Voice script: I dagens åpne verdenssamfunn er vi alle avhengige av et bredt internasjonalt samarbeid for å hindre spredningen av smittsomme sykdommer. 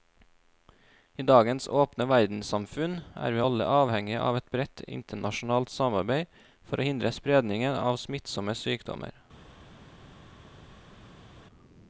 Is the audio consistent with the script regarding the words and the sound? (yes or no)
yes